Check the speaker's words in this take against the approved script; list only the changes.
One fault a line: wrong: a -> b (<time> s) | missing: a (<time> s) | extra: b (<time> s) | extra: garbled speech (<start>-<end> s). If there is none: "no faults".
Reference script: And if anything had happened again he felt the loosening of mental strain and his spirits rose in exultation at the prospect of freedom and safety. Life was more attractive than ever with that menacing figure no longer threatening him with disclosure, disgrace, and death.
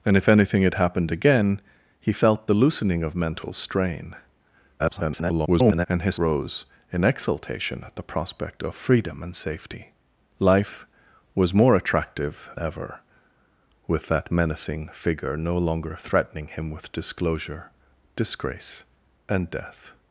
extra: garbled speech (4.8-5.9 s)
missing: spirits (6.1 s)
missing: than (12.5 s)